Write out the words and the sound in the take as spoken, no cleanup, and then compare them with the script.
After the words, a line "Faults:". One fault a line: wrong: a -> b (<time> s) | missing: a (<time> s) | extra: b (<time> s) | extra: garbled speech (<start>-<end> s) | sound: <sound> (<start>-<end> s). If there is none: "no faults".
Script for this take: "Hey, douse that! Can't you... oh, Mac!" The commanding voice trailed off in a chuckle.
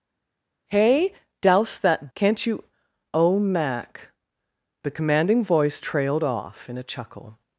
"Hey, douse that! Can't you... oh, Mac!" The commanding voice trailed off in a chuckle.
Faults:
no faults